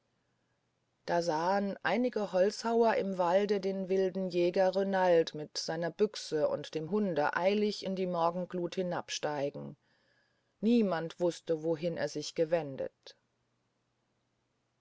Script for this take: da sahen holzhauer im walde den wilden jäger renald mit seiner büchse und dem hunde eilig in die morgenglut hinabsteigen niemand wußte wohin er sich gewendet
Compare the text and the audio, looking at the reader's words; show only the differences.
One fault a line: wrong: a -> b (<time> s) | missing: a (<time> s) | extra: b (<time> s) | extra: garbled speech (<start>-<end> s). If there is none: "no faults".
extra: einige (1.8 s)